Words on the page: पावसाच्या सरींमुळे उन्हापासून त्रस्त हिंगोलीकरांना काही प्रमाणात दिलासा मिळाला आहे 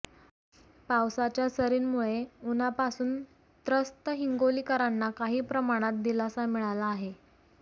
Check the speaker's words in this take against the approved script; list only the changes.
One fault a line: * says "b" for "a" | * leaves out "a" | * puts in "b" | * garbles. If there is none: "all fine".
all fine